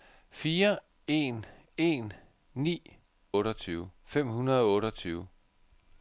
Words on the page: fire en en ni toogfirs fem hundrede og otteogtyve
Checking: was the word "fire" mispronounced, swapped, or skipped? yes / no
no